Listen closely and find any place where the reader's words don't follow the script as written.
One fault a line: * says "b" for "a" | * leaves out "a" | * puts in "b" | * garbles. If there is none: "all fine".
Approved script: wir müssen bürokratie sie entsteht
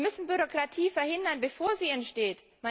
* puts in "verhindern bevor"